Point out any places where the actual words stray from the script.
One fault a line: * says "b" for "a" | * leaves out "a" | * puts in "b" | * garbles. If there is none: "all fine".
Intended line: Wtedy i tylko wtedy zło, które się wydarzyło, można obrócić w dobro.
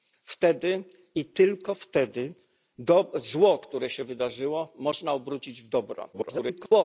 * garbles